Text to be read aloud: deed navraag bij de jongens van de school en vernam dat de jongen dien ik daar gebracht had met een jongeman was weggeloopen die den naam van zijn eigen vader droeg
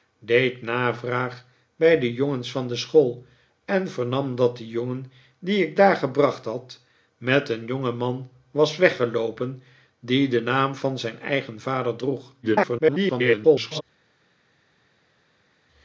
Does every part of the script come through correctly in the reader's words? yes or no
no